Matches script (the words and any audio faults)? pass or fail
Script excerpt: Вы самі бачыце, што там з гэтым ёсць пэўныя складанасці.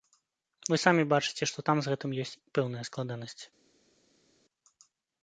pass